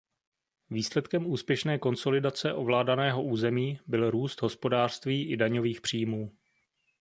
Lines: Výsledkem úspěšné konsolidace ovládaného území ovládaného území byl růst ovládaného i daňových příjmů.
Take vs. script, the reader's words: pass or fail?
fail